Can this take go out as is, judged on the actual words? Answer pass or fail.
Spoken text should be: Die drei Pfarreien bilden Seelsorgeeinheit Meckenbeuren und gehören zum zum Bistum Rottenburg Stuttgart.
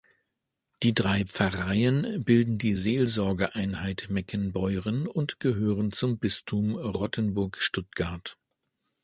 fail